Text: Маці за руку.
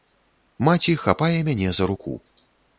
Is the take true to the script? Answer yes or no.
no